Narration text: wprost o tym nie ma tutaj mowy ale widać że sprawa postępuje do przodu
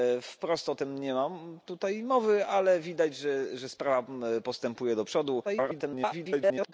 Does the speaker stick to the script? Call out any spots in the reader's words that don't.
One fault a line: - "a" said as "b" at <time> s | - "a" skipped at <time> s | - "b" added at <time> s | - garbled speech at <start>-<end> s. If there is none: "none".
- garbled speech at 5.4-6.7 s